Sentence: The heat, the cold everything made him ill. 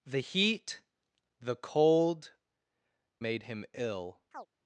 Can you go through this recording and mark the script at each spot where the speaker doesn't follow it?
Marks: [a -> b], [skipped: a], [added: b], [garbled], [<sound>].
The heat, the cold [skipped: everything] made him ill. [chirp]